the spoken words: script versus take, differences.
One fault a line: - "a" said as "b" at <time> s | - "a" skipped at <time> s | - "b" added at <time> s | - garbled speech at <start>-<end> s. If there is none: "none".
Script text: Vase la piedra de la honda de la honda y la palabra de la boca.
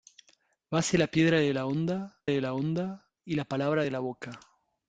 none